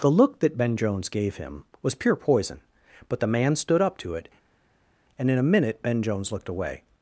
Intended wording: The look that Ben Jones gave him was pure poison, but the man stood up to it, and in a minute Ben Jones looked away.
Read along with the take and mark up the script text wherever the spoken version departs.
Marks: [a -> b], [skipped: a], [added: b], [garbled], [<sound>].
The look that Ben Jones gave him was pure poison, but the man stood up to it, and in a minute Ben Jones looked away.